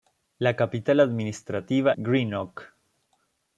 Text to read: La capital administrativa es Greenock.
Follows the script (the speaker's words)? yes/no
no